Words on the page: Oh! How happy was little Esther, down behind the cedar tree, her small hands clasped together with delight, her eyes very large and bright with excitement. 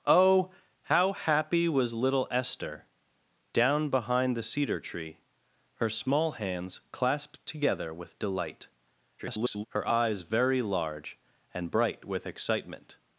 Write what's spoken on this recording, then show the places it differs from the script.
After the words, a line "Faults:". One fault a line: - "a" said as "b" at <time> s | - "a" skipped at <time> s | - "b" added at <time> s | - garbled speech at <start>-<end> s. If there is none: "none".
Oh! How happy was little Esther, down behind the cedar tree, her small hands clasped together with delight, [garbled] her eyes very large and bright with excitement.
Faults:
- garbled speech at 9.2-9.6 s